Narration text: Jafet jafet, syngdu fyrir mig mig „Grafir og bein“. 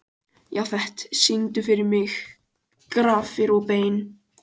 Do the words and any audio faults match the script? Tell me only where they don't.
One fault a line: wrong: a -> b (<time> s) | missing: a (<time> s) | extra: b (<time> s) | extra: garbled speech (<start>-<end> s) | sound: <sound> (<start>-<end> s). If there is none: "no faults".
missing: jafet (1.0 s)
missing: mig (2.2 s)